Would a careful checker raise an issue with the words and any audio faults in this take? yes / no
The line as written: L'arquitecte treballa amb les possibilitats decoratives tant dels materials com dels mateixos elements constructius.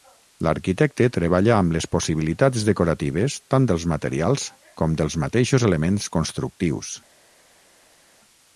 no